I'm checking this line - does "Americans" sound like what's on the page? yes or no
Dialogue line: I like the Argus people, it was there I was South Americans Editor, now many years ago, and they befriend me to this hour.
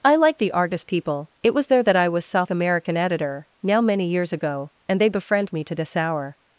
no